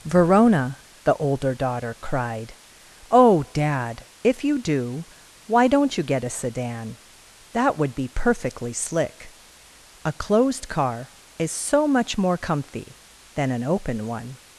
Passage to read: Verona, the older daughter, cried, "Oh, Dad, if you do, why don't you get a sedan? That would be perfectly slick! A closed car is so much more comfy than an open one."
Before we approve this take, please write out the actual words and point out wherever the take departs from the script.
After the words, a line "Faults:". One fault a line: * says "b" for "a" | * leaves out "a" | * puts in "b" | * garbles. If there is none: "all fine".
Verona, the older daughter, cried, "Oh, Dad, if you do, why don't you get a sedan? That would be perfectly slick! A closed car is so much more comfy than an open one."
Faults:
all fine